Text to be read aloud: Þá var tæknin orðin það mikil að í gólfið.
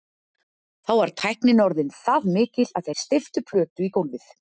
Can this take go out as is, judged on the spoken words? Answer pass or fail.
fail